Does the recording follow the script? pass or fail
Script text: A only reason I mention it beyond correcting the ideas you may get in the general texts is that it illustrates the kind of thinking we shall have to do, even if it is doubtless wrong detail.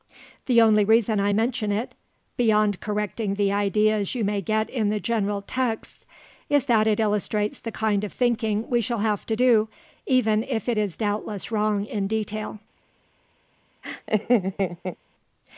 fail